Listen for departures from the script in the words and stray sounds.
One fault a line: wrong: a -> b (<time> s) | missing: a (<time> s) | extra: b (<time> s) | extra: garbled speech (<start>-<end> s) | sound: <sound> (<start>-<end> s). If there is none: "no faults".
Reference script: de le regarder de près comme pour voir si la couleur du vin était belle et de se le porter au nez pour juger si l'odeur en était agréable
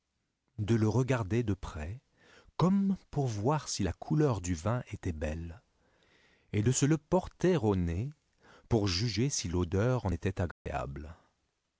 sound: dropout (10.5-10.7 s)